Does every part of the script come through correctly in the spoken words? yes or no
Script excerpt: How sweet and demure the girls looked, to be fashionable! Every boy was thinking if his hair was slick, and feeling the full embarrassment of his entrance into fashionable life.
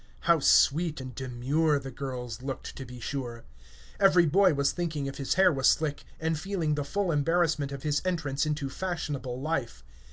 no